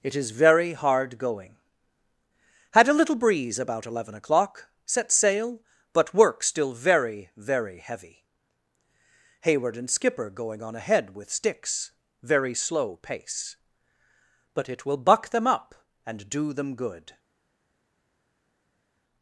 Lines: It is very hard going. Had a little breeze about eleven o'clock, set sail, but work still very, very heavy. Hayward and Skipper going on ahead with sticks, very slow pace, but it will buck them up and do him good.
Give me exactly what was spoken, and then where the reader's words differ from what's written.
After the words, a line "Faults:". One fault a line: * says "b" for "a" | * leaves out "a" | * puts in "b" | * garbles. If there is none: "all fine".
It is very hard going. Had a little breeze about eleven o'clock, set sail, but work still very, very heavy. Hayward and Skipper going on ahead with sticks, very slow pace, but it will buck them up and do them good.
Faults:
* says "them" for "him"